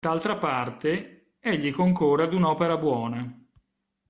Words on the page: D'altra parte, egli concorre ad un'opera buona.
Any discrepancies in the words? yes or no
no